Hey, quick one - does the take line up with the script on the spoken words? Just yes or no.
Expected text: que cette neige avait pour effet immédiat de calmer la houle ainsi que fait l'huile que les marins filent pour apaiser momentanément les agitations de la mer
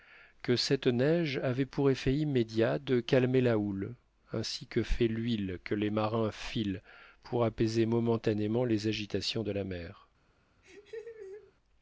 yes